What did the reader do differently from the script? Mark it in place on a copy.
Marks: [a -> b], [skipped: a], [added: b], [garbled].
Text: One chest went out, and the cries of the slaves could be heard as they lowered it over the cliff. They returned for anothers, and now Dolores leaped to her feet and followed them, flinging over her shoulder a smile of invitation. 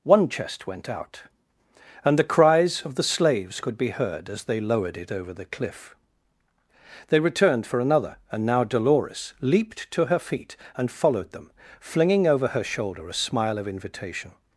One chest went out, and the cries of the slaves could be heard as they lowered it over the cliff. They returned for [anothers, -> another] and now Dolores leaped to her feet and followed them, flinging over her shoulder a smile of invitation.